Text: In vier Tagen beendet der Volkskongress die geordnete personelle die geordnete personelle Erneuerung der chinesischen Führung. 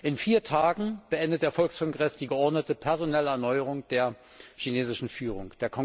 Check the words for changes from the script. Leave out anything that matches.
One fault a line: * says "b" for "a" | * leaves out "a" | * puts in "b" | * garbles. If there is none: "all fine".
* leaves out "die geordnete personelle"